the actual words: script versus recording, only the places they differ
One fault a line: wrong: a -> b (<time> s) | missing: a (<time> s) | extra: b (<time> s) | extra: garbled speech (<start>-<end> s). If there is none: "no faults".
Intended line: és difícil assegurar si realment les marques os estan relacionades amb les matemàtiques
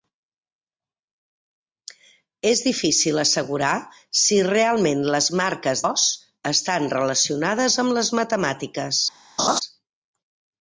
no faults